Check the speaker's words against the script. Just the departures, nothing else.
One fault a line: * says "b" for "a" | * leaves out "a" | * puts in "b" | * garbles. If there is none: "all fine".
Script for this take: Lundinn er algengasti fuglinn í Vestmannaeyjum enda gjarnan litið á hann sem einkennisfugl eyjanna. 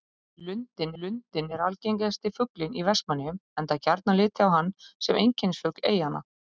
* puts in "lundinn"